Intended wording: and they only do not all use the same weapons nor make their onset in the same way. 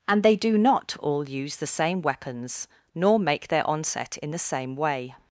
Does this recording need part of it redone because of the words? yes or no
yes